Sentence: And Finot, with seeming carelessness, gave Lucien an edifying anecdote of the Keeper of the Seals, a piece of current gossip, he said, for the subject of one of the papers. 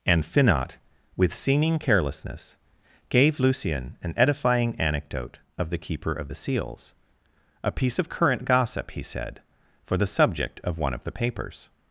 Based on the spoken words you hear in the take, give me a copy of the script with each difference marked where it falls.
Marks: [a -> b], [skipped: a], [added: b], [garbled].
And Finot, with seeming carelessness, gave Lucien an edifying anecdote of the Keeper of the Seals, a piece of current gossip, he said, for the subject of one of the papers.